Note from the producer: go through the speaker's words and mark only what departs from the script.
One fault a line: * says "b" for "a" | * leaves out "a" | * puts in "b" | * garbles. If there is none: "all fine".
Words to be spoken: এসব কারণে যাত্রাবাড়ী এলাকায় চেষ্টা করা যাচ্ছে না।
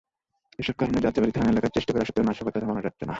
* puts in "থানা"
* puts in "সত্ত্বেও নাশকতা থামানো"